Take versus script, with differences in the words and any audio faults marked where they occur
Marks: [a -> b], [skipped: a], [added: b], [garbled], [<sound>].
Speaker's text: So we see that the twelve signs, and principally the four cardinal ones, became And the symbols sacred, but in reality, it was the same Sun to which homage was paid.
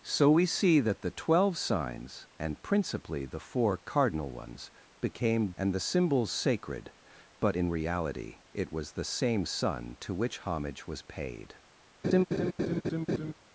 So we see that the twelve signs, and principally the four cardinal ones, became And the symbols sacred, but in reality, it was the same Sun to which homage was paid. [laugh]